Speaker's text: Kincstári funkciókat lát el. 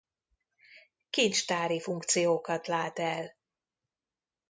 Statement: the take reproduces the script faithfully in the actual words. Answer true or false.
true